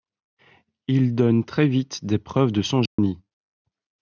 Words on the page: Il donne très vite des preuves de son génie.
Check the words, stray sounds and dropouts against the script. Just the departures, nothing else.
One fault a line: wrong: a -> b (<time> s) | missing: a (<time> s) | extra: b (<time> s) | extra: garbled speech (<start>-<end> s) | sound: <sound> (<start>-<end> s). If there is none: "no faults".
sound: dropout (2.9-3.0 s)